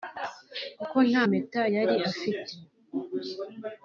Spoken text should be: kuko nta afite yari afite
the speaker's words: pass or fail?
fail